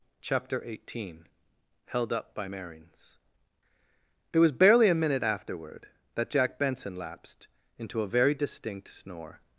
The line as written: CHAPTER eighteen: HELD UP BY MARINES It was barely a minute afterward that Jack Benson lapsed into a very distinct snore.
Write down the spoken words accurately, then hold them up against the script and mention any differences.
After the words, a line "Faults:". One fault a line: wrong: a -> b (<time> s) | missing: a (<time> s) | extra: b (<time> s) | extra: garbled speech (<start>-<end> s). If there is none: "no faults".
CHAPTER eighteen: HELD UP BY MARINES It was barely a minute afterward that Jack Benson lapsed into a very distinct snore.
Faults:
no faults